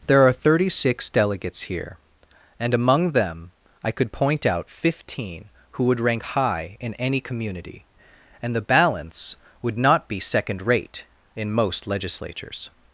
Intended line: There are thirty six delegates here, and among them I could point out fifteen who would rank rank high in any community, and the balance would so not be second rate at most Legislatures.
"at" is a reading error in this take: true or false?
true